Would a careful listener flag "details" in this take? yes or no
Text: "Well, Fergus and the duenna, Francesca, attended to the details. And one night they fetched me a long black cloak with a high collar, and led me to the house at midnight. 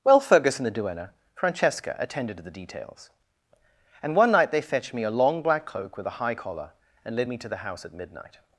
no